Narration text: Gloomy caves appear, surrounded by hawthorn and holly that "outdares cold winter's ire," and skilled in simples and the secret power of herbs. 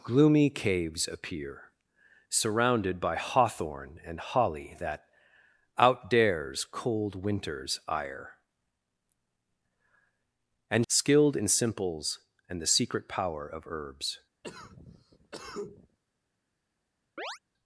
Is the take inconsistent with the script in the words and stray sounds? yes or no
yes